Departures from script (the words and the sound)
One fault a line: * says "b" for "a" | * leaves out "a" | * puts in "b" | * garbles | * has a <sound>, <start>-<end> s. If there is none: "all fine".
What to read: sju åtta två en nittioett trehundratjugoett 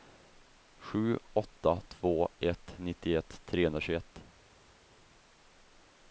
* says "ett" for "en"